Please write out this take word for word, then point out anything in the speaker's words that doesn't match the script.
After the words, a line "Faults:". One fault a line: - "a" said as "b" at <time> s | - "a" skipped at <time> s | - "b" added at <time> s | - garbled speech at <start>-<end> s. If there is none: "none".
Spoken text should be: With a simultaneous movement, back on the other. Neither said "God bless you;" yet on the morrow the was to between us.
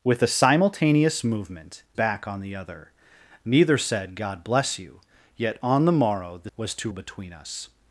With a simultaneous movement, back on the other. Neither said "God bless you;" yet on the morrow the was to between us.
Faults:
none